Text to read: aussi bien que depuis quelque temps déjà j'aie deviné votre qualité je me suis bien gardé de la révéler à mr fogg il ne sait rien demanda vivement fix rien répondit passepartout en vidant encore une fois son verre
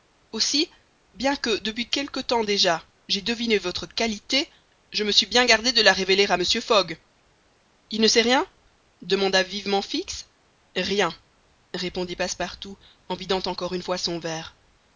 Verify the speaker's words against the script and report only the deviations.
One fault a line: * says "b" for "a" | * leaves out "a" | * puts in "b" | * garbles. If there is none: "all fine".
all fine